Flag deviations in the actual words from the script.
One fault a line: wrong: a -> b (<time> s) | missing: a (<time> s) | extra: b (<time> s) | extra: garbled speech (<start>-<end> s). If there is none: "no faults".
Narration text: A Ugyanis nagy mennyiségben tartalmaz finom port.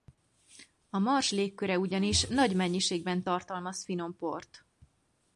extra: Mars légköre (1.0 s)